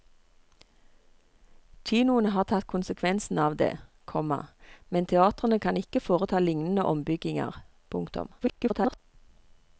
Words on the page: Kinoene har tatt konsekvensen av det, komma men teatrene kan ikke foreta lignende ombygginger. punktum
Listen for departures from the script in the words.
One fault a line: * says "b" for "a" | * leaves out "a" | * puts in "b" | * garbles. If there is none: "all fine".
* garbles